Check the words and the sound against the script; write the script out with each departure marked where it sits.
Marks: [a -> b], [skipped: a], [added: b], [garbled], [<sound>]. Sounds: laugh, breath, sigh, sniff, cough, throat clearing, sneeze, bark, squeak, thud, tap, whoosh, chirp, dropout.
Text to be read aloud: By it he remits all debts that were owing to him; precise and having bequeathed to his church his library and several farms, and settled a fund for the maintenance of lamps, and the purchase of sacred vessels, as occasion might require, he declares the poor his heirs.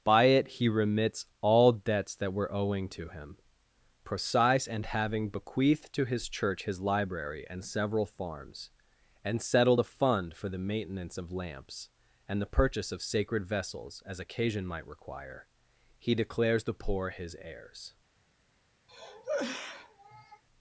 By it he remits all debts that were owing to him; precise and having bequeathed to his church his library and several farms, and settled a fund for the maintenance of lamps, and the purchase of sacred vessels, as occasion might require, he declares the poor his heirs. [cough]